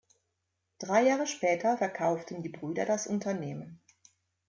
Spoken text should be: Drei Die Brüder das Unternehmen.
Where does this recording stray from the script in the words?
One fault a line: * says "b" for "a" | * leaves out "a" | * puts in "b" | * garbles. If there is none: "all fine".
* puts in "Jahre später verkauften"